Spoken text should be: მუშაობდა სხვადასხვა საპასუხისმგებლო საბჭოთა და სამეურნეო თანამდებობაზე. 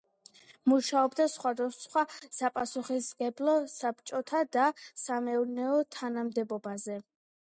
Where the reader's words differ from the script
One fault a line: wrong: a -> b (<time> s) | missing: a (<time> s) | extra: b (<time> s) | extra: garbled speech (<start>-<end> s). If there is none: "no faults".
no faults